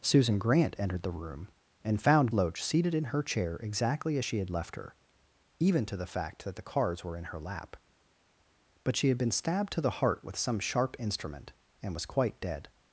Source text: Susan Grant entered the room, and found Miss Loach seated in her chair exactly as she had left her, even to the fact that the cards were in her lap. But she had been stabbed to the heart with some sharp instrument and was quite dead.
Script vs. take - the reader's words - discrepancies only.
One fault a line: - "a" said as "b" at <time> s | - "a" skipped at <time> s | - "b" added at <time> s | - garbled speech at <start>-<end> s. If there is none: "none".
- "Miss" skipped at 2.3 s